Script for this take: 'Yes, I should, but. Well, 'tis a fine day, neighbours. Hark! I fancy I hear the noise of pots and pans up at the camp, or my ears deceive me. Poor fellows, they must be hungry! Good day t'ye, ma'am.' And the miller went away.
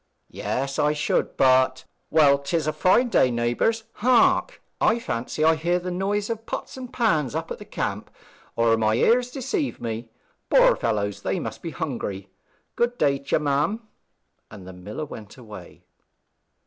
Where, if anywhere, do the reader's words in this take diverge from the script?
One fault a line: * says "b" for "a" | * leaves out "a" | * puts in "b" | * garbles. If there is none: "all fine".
all fine